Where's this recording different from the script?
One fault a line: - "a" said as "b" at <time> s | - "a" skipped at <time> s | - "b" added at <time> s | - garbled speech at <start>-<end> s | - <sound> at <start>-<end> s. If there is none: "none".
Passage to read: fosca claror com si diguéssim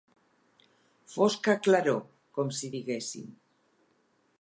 none